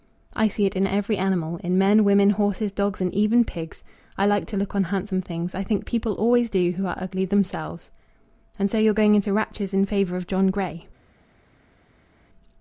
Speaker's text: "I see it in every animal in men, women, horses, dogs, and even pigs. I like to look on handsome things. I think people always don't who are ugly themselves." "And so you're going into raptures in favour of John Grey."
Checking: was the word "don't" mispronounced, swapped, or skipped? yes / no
yes